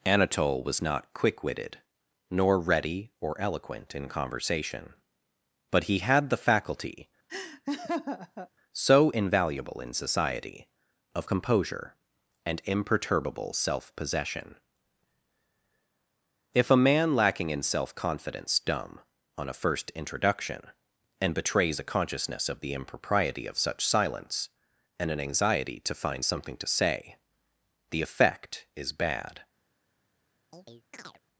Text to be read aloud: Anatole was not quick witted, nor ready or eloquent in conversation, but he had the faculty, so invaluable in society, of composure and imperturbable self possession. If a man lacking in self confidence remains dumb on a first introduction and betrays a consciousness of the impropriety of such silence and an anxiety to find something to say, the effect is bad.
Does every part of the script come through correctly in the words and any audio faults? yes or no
no